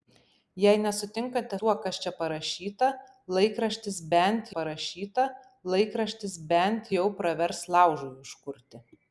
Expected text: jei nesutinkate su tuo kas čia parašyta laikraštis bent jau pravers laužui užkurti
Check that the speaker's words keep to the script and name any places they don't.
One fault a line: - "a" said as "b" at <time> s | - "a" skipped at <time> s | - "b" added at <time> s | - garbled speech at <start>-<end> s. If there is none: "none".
- "su" skipped at 1.6 s
- "parašyta laikraštis bent" added at 4.6 s